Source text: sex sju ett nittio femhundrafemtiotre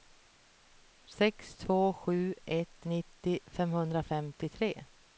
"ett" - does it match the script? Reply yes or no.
yes